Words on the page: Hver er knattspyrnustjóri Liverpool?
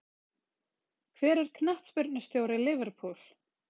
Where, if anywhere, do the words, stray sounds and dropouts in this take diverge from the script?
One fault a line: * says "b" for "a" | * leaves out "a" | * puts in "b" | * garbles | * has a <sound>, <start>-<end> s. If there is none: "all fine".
all fine